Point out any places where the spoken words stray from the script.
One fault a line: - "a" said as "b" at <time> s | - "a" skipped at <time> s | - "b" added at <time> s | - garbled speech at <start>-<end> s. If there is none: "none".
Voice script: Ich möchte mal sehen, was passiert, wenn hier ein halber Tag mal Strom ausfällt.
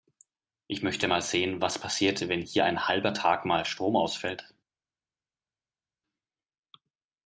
none